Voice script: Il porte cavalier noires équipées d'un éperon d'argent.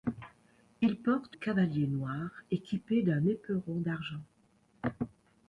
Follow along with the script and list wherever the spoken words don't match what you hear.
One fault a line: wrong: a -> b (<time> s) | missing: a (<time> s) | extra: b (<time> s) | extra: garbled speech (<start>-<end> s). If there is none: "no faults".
no faults